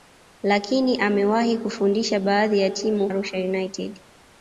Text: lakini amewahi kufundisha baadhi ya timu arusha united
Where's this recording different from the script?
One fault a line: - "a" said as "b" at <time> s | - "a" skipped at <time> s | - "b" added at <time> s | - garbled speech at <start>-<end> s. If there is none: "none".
none